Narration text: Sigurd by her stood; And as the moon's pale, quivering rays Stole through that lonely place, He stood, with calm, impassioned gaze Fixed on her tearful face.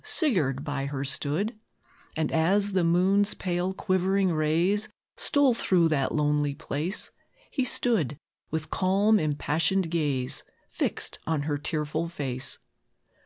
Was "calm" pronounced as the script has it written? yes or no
yes